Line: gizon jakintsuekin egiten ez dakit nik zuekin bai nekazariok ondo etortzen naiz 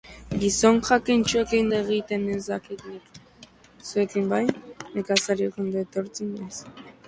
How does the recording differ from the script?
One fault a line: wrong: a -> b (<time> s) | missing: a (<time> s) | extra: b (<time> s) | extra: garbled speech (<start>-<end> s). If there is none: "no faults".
no faults